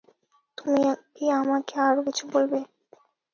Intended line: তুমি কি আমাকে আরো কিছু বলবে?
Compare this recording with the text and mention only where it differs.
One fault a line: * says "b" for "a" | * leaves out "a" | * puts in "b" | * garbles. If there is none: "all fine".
all fine